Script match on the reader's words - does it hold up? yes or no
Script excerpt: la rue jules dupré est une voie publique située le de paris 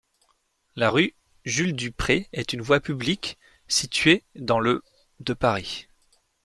no